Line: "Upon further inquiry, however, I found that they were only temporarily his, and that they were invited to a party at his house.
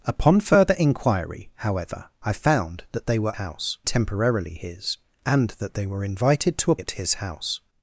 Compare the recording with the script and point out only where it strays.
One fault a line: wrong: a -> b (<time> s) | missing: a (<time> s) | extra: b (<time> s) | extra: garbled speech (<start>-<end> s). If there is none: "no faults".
wrong: only -> house (3.3 s)
missing: party (6.8 s)